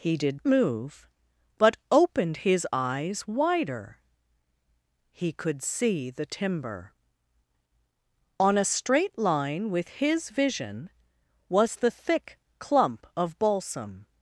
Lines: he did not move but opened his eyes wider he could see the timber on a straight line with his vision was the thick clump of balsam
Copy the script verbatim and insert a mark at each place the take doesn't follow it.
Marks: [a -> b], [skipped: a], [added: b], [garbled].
he did [skipped: not] move but opened his eyes wider he could see the timber on a straight line with his vision was the thick clump of balsam